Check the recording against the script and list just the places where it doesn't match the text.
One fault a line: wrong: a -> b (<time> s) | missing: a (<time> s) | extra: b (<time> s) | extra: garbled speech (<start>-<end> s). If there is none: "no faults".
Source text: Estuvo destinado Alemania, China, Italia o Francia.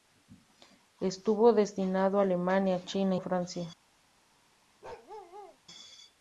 missing: Italia (3.1 s)